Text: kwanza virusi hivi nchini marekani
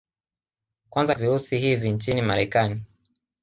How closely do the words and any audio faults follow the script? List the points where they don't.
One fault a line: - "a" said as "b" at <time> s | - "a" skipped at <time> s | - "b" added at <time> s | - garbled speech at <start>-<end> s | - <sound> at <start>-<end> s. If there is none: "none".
none